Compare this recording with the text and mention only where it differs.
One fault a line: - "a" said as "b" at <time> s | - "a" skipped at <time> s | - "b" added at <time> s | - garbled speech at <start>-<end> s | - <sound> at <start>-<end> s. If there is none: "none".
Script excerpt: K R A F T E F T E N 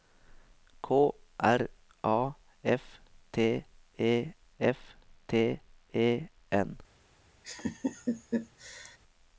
- laugh at 7.4-9.0 s